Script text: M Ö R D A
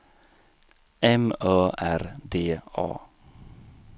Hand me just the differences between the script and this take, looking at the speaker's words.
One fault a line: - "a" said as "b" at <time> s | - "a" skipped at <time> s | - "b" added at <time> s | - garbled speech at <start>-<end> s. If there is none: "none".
none